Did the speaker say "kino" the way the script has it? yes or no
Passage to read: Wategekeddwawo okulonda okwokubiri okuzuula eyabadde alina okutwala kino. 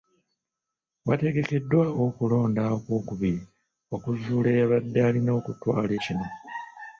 yes